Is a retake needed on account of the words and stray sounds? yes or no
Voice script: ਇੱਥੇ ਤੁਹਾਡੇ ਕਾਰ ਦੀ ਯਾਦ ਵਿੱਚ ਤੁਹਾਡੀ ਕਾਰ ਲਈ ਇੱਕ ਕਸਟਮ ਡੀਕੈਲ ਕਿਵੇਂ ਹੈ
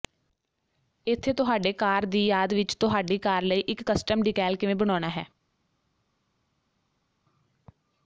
yes